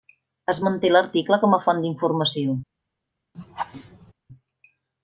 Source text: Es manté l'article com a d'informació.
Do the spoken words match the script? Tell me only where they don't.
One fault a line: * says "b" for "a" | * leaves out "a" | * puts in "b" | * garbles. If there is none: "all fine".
* puts in "font"